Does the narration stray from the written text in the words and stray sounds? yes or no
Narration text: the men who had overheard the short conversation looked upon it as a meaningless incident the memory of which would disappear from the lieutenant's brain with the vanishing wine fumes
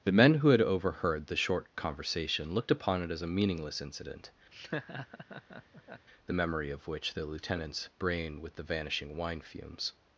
yes